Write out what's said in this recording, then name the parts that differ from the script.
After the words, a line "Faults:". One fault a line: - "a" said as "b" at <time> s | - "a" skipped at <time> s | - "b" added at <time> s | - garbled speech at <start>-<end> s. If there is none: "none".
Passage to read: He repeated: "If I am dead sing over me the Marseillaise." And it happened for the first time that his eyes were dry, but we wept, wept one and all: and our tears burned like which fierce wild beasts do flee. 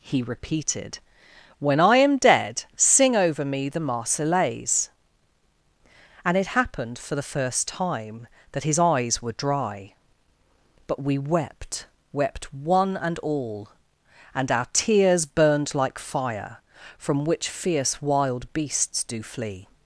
He repeated: "When I am dead sing over me the Marseillaise." And it happened for the first time that his eyes were dry, but we wept, wept one and all: and our tears burned like fire from which fierce wild beasts do flee.
Faults:
- "If" said as "When" at 1.6 s
- "fire from" added at 16.0 s